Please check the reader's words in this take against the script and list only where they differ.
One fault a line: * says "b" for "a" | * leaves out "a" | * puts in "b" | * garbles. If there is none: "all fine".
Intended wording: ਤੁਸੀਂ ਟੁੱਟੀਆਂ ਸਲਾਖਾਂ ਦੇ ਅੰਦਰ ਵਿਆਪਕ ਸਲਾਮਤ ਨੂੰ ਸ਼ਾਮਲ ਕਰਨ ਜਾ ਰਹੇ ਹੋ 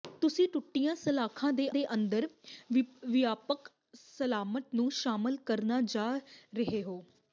* puts in "ਦੇ"